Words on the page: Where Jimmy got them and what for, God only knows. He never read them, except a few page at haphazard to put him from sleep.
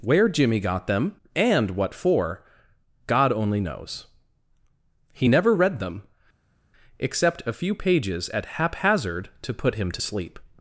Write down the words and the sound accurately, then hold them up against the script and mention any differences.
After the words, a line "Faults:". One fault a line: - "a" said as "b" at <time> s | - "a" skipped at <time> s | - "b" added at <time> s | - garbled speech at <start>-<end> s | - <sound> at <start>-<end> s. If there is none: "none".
Where Jimmy got them and what for, God only knows. He never read them, except a few pages at haphazard to put him to sleep.
Faults:
- "page" said as "pages" at 7.8 s
- "from" said as "to" at 9.9 s